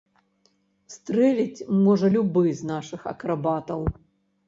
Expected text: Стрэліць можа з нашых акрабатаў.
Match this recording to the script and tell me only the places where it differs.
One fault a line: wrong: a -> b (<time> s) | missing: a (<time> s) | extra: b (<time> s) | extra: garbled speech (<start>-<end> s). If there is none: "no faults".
extra: любы (2.1 s)